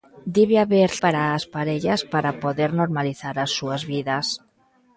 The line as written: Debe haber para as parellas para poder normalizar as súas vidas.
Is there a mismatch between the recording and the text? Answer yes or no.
no